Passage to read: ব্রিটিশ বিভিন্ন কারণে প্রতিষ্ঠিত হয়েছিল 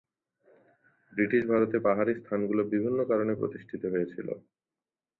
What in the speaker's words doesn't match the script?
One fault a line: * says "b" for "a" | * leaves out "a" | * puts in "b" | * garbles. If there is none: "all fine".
* puts in "ভারতে পাহাড়ি স্থানগুলো"